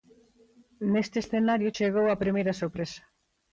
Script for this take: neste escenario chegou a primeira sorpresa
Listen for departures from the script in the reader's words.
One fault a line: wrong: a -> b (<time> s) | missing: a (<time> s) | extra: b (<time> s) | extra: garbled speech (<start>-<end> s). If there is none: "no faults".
no faults